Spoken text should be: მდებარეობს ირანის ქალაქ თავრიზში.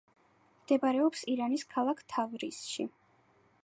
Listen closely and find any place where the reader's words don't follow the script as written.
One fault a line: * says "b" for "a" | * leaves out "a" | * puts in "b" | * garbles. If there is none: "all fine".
all fine